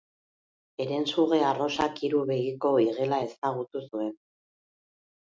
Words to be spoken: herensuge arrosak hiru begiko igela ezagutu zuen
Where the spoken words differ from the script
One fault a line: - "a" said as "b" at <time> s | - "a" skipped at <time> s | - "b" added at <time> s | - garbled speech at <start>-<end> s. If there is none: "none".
none